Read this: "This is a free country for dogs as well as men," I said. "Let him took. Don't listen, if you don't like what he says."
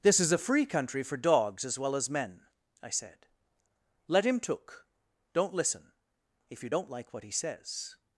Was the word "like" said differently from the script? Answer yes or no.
no